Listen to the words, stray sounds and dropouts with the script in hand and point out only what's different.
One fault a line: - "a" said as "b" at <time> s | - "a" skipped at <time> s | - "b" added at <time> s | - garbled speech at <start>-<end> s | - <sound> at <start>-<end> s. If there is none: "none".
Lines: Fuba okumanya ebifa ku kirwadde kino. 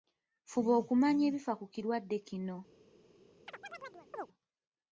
- chirp at 3.5-4.3 s